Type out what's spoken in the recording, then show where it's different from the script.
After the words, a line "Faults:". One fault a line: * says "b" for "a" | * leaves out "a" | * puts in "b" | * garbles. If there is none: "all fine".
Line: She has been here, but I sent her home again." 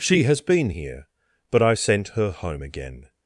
She has been here, but I sent her home again."
Faults:
all fine